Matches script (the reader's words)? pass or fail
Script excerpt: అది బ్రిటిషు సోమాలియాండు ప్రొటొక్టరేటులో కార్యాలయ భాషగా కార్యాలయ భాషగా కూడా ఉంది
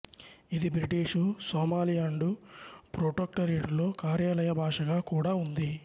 fail